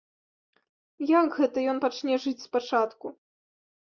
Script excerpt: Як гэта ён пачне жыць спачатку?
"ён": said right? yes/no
yes